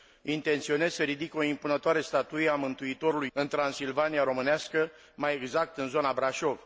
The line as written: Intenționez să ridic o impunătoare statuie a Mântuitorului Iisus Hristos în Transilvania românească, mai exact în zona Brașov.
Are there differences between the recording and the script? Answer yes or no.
yes